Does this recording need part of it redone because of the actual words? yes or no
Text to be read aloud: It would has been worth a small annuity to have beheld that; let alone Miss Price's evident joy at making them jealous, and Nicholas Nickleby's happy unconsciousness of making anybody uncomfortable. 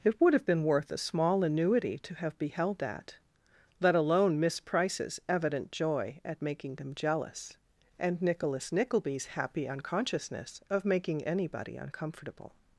yes